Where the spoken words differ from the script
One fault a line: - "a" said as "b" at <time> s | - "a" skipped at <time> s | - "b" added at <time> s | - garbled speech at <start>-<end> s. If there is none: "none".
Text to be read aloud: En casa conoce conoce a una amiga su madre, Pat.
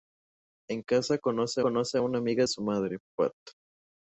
none